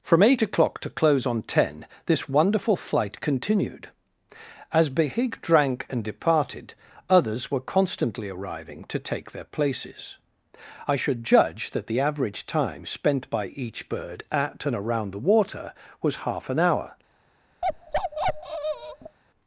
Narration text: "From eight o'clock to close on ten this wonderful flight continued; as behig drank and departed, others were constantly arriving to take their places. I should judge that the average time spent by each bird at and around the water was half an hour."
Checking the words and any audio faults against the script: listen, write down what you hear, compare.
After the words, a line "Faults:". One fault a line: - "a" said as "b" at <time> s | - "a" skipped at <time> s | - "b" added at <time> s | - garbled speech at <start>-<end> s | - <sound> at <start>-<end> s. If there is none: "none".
"From eight o'clock to close on ten this wonderful flight continued; as behig drank and departed, others were constantly arriving to take their places. I should judge that the average time spent by each bird at and around the water was half an hour."
Faults:
- bark at 17.6-19.2 s